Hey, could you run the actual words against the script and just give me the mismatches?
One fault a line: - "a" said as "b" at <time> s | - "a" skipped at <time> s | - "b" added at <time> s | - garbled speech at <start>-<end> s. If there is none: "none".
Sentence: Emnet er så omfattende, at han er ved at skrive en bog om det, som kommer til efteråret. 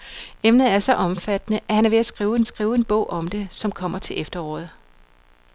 - "skrive en" added at 2.4 s